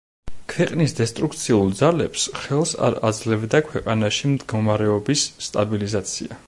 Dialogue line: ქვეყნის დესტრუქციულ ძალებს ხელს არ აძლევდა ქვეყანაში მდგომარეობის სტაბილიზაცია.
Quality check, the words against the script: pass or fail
pass